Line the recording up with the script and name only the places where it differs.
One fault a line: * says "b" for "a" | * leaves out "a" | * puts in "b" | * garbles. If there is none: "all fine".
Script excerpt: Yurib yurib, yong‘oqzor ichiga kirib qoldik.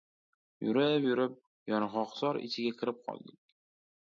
all fine